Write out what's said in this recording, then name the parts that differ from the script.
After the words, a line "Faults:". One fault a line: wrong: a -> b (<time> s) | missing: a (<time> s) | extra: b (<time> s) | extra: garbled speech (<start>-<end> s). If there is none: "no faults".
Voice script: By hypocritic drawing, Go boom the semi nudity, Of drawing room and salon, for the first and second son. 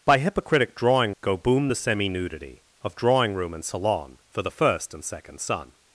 By hypocritic drawing, Go boom the semi nudity, Of drawing room and salon, for the first and second son.
Faults:
no faults